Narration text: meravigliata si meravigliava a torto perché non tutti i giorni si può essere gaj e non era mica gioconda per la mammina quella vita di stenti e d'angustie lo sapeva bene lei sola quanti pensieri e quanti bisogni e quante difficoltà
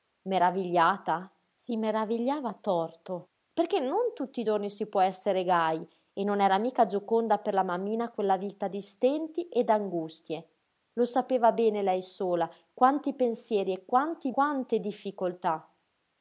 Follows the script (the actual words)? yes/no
no